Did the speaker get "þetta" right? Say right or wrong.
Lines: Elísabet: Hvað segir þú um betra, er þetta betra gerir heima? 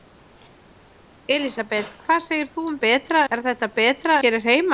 right